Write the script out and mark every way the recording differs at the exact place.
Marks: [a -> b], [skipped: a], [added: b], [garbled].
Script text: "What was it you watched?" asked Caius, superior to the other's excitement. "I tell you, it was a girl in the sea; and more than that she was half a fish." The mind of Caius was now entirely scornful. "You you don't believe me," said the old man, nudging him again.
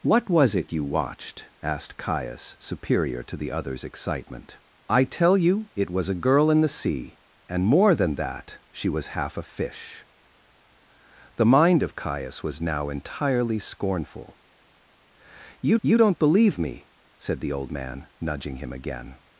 "What was it you watched?" asked Caius, superior to the other's excitement. "I tell you, it was a girl in the sea; and more than that she was half a fish." The mind of Caius was now entirely scornful. "You you don't believe me," said the old man, nudging him again.